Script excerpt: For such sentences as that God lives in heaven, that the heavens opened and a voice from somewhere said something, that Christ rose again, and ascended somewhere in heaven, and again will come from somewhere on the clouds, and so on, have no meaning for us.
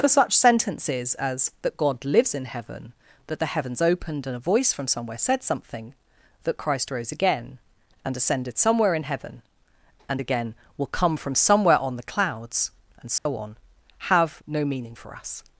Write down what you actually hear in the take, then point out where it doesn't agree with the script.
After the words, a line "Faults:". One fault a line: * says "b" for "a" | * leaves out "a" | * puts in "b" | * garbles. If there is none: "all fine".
For such sentences as that God lives in heaven, that the heavens opened and a voice from somewhere said something, that Christ rose again, and ascended somewhere in heaven, and again will come from somewhere on the clouds, and so on, have no meaning for us.
Faults:
all fine